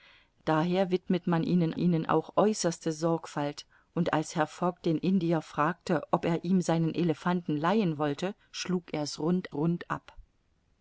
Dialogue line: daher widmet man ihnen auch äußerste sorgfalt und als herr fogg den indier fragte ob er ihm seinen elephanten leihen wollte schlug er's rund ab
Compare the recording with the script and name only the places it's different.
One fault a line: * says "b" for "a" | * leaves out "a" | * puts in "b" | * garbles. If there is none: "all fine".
* puts in "ihnen"
* puts in "rund"